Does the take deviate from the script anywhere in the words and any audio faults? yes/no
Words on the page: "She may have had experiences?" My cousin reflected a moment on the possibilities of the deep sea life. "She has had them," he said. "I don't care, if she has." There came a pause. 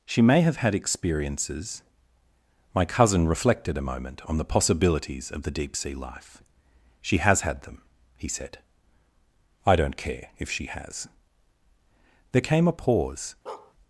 yes